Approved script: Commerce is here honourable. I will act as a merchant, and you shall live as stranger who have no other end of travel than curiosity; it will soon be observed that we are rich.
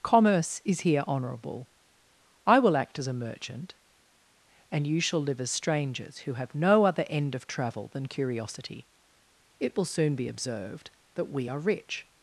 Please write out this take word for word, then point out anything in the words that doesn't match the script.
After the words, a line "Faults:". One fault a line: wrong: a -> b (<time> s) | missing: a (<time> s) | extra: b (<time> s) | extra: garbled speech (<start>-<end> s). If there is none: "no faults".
Commerce is here honourable. I will act as a merchant, and you shall live as strangers who have no other end of travel than curiosity; it will soon be observed that we are rich.
Faults:
wrong: stranger -> strangers (5.5 s)